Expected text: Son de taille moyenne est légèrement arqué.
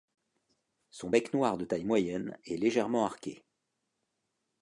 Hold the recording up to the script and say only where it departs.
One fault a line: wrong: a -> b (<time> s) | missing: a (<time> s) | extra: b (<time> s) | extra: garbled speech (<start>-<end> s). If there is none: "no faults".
extra: bec noir (1.1 s)